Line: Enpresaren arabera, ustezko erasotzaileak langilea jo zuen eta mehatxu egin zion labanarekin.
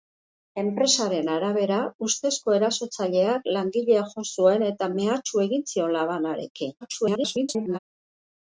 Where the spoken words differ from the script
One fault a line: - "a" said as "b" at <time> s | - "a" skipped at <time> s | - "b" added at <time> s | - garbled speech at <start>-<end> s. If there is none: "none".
- garbled speech at 6.8-7.8 s